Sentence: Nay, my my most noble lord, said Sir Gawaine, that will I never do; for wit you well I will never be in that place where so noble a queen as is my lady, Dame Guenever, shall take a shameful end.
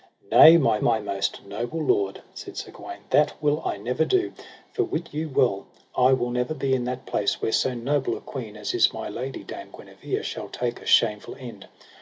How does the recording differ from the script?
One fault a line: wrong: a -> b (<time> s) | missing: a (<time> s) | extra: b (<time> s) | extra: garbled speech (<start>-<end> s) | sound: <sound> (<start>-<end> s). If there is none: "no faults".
no faults